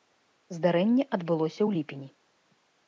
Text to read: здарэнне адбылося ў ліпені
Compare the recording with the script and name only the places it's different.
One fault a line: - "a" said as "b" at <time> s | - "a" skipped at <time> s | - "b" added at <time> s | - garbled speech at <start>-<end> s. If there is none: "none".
none